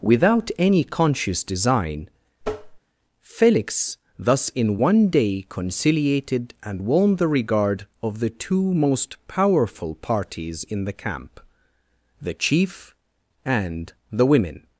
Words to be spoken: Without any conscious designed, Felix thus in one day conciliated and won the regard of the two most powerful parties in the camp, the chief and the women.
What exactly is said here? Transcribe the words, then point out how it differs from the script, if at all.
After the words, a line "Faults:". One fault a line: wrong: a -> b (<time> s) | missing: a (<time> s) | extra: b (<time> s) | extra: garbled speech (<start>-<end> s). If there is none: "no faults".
Without any conscious design, Felix thus in one day conciliated and won the regard of the two most powerful parties in the camp, the chief and the women.
Faults:
wrong: designed -> design (1.4 s)